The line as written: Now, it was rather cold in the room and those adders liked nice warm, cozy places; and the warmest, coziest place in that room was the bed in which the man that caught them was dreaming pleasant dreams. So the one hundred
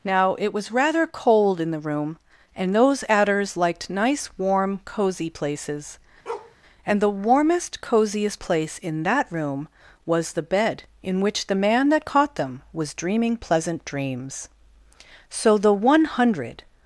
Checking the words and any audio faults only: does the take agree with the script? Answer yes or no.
no